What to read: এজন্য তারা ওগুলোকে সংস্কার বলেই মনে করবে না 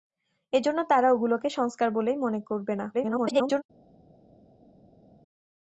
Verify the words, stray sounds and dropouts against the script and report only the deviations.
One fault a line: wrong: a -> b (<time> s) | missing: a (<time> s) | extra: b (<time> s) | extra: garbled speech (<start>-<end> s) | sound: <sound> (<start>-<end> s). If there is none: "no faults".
extra: garbled speech (2.9-3.6 s)